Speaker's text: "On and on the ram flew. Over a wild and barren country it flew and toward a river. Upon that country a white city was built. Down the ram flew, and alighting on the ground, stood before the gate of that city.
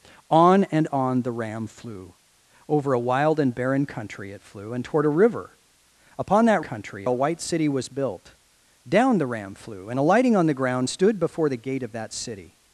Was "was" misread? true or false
false